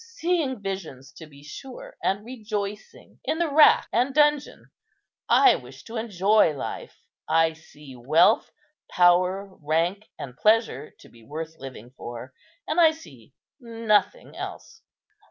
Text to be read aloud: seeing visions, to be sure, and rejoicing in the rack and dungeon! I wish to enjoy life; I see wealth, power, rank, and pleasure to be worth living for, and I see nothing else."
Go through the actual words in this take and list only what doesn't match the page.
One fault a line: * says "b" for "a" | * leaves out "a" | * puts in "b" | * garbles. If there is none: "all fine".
all fine